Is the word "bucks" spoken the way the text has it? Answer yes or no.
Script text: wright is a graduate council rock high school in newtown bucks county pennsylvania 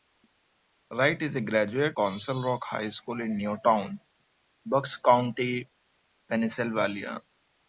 yes